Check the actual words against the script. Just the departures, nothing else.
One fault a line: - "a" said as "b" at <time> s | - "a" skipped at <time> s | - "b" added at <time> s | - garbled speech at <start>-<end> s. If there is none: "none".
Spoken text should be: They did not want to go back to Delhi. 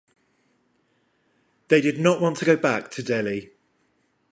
none